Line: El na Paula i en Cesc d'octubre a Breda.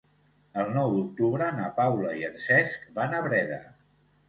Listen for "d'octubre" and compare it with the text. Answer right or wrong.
wrong